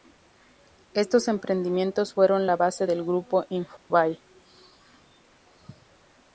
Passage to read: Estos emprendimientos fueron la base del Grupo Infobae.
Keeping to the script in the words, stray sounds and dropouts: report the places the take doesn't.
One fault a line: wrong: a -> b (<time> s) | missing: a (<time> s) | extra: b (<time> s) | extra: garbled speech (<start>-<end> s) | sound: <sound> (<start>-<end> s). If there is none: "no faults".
sound: dropout (3.8-3.9 s)